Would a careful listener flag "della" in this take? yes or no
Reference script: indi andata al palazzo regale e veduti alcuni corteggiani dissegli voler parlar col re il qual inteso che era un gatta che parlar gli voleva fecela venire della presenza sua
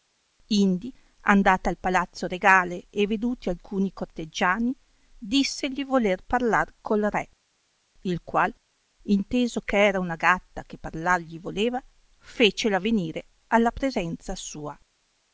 yes